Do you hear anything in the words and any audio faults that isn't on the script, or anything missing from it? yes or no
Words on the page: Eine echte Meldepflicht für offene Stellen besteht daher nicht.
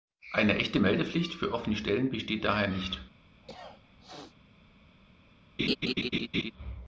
yes